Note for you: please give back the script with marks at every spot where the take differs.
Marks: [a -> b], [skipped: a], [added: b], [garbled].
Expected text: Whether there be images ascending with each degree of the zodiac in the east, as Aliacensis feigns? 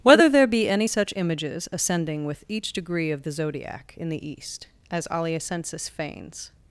Whether there be [added: any such] images ascending with each degree of the zodiac in the east, as Aliacensis feigns?